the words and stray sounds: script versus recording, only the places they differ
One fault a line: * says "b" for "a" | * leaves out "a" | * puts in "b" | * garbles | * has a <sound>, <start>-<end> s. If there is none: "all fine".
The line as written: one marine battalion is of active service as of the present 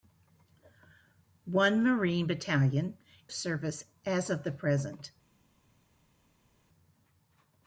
* leaves out "is of active"